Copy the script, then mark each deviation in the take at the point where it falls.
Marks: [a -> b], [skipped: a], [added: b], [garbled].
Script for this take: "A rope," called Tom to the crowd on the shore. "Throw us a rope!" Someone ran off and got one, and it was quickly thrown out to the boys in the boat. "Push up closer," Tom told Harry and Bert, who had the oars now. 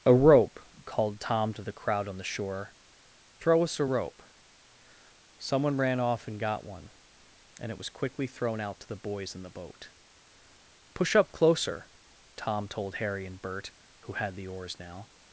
"A rope," called Tom to the crowd on the shore. "Throw us a rope!" Someone ran off and got one, and it was quickly thrown out to the boys in the boat. "Push up closer," Tom told Harry and Bert, who had the oars now.